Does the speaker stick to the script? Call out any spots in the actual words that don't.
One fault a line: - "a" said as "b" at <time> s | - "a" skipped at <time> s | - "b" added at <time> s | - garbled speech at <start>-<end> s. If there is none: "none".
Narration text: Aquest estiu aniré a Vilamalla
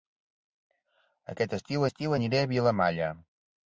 - "estiu" added at 1.9 s